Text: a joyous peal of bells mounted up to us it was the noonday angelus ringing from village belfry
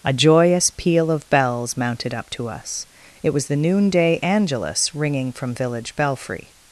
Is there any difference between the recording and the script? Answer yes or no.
no